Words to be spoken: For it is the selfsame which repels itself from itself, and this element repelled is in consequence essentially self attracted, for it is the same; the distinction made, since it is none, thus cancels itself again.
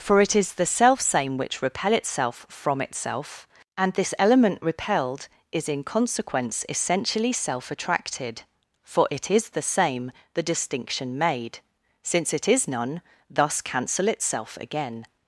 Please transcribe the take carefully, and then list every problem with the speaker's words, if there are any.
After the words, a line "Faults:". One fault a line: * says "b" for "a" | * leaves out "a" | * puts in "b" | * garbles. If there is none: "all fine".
For it is the selfsame which repel itself from itself, and this element repelled is in consequence essentially self attracted, for it is the same; the distinction made, since it is none, thus cancel itself again.
Faults:
* says "repel" for "repels"
* says "cancel" for "cancels"